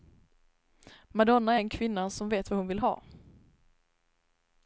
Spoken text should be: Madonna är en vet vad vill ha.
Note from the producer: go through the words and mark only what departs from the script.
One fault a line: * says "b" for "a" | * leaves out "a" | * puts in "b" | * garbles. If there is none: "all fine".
* puts in "kvinna som"
* puts in "hon"